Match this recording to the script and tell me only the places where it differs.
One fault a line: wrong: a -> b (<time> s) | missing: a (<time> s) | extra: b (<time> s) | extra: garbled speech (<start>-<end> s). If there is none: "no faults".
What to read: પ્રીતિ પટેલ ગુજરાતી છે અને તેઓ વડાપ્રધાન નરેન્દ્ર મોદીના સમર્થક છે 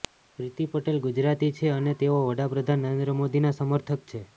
no faults